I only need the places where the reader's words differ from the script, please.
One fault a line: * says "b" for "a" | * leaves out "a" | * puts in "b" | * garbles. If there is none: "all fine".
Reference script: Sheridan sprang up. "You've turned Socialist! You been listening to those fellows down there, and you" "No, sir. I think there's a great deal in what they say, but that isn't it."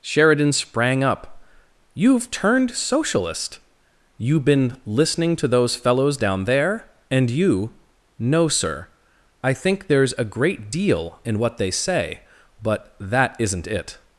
all fine